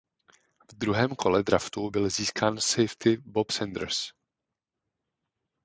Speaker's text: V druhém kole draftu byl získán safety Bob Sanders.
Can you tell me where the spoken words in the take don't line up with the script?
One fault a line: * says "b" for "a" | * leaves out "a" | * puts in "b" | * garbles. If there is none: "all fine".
all fine